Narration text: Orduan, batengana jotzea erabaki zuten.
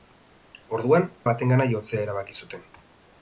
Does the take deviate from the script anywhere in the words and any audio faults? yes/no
no